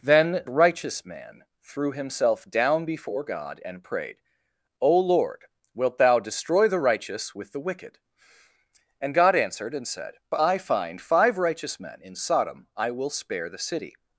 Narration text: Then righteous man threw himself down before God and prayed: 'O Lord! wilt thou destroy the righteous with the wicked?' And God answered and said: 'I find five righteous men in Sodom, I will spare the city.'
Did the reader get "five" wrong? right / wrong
right